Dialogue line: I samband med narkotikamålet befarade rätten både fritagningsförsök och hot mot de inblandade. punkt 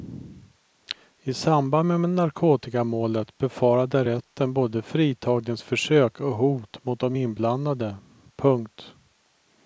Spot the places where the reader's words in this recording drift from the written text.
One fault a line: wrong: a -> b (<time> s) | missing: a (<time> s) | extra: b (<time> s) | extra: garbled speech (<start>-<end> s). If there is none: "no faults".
no faults